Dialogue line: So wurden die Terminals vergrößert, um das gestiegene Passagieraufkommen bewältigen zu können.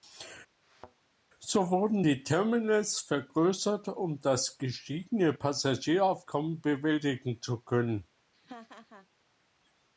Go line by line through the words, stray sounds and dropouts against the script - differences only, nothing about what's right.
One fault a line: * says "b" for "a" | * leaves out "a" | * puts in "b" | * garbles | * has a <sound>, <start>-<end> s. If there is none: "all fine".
* has a thud, 0.6-1.0 s
* has a laugh, 8.3-9.1 s